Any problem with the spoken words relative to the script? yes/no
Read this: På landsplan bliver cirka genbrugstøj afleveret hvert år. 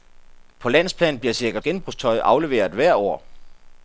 no